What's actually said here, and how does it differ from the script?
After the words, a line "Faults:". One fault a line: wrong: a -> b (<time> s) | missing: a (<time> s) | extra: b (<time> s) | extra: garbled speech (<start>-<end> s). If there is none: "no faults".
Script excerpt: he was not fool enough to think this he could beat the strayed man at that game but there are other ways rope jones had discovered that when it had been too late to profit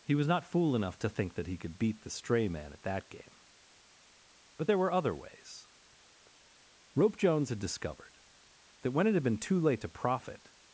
he was not fool enough to think that he could beat the stray man at that game but there were other ways rope jones had discovered that when it had been too late to profit
Faults:
wrong: this -> that (1.3 s)
wrong: strayed -> stray (2.1 s)
wrong: are -> were (4.8 s)